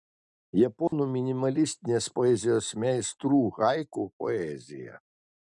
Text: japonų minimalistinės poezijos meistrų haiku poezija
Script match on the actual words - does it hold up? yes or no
yes